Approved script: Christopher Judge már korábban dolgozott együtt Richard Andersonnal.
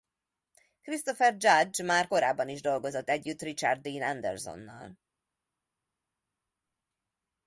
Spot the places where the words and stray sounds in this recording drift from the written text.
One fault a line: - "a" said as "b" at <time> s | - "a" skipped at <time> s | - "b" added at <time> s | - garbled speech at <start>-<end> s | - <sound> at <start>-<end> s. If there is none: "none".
- "is" added at 2.5 s
- "Dean" added at 3.8 s